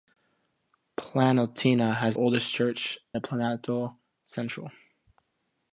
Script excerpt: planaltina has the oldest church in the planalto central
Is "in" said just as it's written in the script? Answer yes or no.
no